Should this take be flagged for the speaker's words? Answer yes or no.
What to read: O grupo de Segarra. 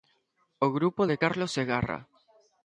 yes